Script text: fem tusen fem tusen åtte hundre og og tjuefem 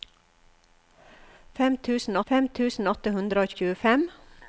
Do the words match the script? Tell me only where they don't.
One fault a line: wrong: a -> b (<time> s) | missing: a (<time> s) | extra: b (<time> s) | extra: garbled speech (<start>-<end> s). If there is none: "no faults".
no faults